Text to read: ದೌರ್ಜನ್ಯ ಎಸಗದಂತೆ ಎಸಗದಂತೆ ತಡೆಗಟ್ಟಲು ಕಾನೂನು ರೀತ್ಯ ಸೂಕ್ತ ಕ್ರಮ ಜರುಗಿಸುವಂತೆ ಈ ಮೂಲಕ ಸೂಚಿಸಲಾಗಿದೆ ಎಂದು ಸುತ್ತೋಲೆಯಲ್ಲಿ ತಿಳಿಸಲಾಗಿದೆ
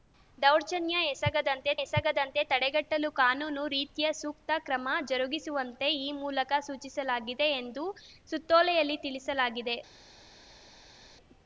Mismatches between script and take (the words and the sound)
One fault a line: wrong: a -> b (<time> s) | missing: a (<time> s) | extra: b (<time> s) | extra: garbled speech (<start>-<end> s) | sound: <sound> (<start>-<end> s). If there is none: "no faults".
no faults